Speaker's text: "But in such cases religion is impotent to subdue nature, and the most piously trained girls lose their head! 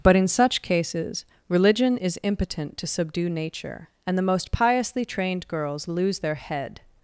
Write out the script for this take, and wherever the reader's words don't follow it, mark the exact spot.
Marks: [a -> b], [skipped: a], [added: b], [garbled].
"But in such cases religion is impotent to subdue nature, and the most piously trained girls lose their head!